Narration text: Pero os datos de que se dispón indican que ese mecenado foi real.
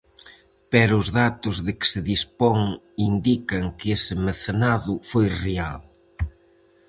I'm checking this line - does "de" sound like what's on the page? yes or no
yes